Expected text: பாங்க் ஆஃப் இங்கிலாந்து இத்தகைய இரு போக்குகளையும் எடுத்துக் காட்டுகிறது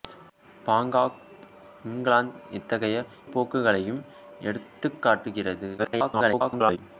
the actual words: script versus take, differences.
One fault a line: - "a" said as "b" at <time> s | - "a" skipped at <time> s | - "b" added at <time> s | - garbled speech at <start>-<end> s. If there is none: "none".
- "இரு" skipped at 3.0 s
- garbled speech at 5.8-6.8 s